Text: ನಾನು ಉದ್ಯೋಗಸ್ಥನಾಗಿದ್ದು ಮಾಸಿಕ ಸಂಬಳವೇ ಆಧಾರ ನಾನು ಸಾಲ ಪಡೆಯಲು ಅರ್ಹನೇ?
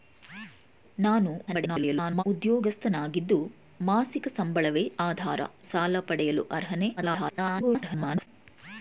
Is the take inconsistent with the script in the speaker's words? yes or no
yes